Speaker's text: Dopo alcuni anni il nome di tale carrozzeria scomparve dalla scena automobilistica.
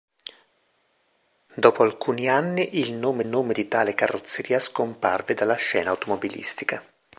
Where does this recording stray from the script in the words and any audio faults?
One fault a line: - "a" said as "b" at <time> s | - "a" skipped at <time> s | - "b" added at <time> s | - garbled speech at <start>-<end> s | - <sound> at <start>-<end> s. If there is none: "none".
- "nome" added at 3.2 s